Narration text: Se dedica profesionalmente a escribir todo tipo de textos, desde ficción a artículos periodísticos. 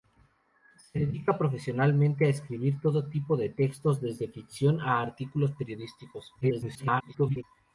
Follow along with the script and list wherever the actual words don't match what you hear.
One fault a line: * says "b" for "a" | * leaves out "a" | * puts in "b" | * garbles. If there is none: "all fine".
* garbles